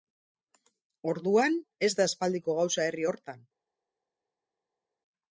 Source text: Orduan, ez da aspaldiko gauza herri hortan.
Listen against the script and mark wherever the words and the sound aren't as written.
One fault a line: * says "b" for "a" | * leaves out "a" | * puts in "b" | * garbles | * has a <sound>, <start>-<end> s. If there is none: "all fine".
all fine